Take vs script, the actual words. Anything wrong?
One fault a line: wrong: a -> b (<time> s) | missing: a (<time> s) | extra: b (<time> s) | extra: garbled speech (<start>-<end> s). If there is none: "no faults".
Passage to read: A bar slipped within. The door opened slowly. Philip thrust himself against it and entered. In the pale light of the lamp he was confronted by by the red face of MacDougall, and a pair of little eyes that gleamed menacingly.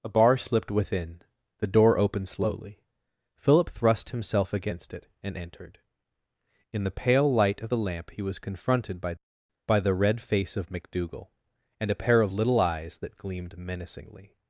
no faults